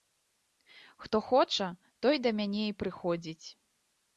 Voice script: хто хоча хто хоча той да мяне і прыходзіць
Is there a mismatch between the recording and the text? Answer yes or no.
yes